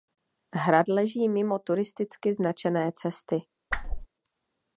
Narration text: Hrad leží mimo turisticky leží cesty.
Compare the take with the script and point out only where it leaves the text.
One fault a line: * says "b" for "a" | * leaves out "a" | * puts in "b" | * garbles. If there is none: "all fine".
* says "značené" for "leží"